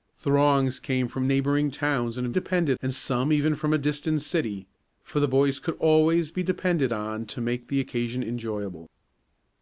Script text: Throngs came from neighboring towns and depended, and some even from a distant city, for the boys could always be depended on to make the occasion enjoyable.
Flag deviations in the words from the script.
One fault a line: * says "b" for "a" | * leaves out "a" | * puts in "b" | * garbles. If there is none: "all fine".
all fine